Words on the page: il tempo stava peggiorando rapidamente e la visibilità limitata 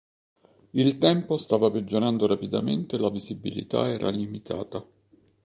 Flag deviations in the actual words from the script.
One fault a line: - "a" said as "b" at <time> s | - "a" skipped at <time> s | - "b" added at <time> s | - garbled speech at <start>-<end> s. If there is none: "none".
- "era" added at 3.9 s